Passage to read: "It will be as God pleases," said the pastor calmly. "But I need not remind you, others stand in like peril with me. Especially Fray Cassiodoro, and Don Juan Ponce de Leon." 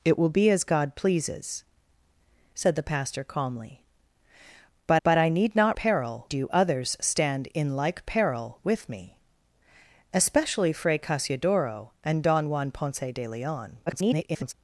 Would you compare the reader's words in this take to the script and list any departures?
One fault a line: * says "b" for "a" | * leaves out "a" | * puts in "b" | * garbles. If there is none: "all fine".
* puts in "but"
* says "peril" for "remind"
* garbles